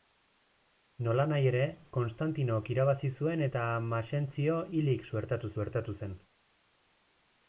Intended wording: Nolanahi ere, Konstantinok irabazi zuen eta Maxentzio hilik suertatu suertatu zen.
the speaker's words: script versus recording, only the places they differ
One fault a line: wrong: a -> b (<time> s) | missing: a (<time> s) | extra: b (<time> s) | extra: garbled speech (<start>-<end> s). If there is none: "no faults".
no faults